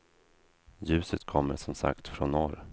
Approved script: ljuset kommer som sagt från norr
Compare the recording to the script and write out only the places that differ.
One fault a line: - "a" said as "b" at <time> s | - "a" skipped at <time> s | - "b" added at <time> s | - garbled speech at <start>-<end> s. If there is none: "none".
none